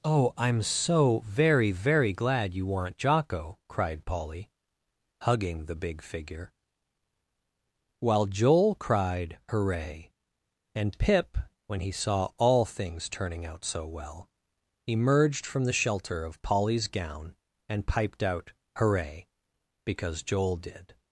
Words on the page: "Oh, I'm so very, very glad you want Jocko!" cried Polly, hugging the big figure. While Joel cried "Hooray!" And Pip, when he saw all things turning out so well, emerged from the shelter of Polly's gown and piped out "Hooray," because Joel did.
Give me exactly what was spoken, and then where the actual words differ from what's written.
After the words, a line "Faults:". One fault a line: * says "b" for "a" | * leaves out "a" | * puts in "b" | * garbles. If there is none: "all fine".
"Oh, I'm so very, very glad you weren't Jocko!" cried Polly, hugging the big figure. While Joel cried "Hooray!" And Pip, when he saw all things turning out so well, emerged from the shelter of Polly's gown and piped out "Hooray," because Joel did.
Faults:
* says "weren't" for "want"